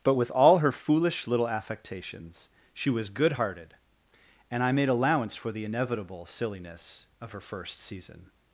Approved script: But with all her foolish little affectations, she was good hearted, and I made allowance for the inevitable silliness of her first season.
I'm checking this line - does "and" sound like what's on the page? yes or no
yes